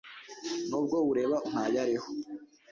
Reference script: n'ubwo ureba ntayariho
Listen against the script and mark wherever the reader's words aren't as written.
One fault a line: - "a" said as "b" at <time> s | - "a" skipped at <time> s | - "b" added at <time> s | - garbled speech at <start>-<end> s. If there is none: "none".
none